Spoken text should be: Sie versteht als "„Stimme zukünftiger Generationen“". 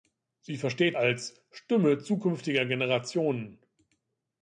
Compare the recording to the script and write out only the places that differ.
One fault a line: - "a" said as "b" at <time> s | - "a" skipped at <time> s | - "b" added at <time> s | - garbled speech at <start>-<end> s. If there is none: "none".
none